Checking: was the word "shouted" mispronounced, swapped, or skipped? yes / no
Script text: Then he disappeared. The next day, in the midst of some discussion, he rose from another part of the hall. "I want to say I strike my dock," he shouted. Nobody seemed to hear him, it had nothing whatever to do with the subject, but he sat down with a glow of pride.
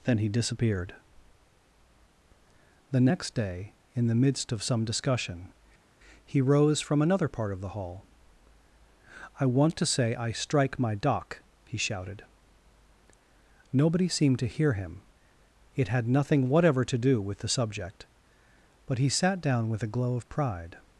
no